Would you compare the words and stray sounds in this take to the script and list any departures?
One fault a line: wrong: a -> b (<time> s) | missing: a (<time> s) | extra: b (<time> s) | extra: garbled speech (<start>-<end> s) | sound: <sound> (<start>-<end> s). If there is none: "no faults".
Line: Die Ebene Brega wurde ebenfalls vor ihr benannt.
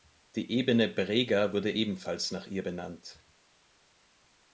wrong: vor -> nach (2.3 s)